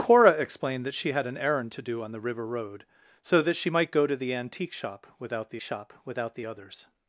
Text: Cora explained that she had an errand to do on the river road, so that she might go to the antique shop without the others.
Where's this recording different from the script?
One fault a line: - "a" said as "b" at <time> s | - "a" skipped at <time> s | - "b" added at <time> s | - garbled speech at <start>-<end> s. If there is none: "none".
- "shop without the" added at 5.6 s